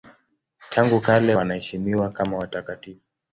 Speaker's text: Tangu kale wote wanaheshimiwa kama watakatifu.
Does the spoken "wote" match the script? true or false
false